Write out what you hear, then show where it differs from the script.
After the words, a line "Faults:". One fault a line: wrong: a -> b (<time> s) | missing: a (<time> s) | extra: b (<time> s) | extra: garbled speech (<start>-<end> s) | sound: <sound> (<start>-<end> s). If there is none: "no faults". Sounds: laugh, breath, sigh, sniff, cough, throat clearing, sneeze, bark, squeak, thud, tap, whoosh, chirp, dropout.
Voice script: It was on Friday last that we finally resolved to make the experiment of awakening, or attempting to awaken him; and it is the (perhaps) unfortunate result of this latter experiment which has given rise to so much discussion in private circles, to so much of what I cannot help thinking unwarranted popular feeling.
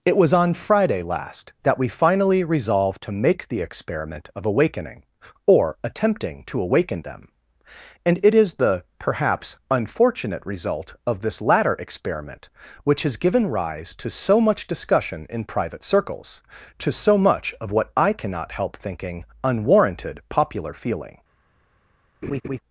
It was on Friday last that we finally resolved to make the experiment of awakening, or attempting to awaken them; and it is the (perhaps) unfortunate result of this latter experiment which has given rise to so much discussion in private circles, to so much of what I cannot help thinking unwarranted popular feeling.
Faults:
wrong: him -> them (7.0 s)
sound: laugh (22.2-22.6 s)